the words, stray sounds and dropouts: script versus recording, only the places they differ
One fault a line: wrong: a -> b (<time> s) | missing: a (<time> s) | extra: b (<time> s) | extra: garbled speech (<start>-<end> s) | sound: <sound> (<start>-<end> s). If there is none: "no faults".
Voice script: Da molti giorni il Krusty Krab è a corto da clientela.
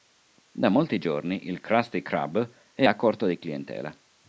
wrong: da -> di (3.3 s)